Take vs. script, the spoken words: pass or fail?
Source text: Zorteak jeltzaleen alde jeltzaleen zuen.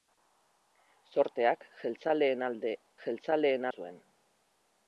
pass